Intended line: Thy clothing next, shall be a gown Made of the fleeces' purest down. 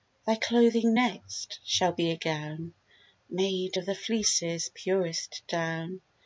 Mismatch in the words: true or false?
false